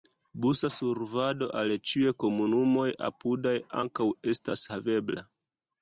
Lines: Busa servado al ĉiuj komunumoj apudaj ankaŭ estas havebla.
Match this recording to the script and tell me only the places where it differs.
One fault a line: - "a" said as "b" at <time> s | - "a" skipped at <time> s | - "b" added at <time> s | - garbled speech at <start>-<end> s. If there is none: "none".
none